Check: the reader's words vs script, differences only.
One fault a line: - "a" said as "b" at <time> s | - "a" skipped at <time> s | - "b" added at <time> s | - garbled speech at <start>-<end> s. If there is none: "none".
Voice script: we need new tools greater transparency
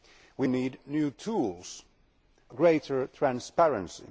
none